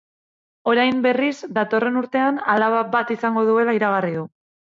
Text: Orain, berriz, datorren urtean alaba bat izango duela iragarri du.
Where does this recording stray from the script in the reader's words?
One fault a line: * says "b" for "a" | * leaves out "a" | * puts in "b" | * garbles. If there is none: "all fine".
all fine